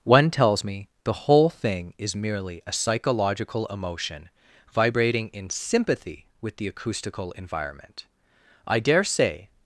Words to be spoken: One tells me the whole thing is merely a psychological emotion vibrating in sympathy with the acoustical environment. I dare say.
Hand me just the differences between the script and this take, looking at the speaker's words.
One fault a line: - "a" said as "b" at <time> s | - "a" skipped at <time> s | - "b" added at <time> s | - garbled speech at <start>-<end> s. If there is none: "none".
none